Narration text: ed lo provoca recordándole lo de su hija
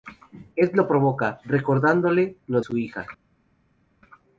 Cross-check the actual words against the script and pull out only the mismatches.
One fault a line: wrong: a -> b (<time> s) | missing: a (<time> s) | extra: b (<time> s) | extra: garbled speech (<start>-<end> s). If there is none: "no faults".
missing: de (2.6 s)